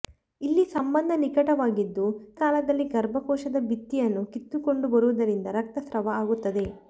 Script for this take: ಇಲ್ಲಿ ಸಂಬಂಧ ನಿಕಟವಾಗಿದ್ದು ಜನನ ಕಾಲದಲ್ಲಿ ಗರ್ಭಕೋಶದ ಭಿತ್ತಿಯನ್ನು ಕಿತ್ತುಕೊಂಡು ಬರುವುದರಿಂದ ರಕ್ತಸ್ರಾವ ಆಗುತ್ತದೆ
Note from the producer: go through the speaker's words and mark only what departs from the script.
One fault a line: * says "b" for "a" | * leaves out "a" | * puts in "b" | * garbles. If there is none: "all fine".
* leaves out "ಜನನ"